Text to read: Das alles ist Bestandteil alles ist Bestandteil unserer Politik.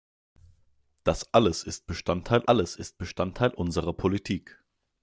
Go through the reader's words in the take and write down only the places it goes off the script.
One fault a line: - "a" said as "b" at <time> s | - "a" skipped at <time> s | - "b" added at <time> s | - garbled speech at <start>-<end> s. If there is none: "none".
none